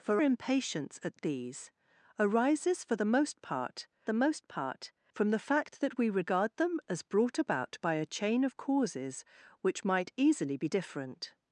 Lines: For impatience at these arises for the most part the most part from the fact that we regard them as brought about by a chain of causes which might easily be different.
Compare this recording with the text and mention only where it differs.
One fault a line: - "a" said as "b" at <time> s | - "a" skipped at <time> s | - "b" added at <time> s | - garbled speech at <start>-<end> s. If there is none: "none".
none